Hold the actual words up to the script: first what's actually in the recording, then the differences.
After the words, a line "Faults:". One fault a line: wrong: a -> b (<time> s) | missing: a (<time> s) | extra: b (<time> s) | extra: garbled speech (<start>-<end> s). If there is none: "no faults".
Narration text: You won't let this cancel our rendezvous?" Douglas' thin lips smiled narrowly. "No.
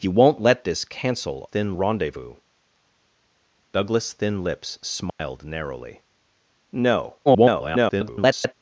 You won't let this cancel thin rendezvous?" Douglas' thin lips smiled narrowly. "No. [garbled]
Faults:
wrong: our -> thin (1.4 s)
extra: garbled speech (7.3-8.5 s)